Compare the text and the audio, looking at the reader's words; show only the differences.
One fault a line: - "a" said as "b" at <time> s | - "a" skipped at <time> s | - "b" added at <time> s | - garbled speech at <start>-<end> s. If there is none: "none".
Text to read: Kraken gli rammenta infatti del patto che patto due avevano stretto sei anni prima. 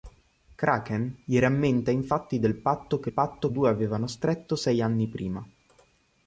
none